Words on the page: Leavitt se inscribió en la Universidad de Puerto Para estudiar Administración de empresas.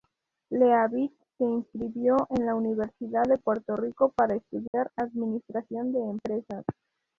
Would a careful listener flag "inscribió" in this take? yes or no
no